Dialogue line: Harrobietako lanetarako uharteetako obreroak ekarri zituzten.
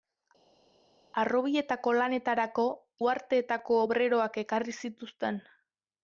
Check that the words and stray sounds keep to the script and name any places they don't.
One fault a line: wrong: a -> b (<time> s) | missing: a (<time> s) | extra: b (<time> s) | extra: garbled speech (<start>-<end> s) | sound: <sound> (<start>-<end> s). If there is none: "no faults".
no faults